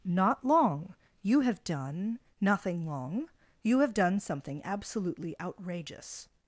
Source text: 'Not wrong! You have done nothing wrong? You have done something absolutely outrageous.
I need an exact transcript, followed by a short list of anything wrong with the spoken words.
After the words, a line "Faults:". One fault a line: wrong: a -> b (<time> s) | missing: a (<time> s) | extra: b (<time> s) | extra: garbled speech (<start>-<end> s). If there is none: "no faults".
'Not long! You have done nothing long? You have done something absolutely outrageous.
Faults:
wrong: wrong -> long (0.4 s)
wrong: wrong -> long (2.9 s)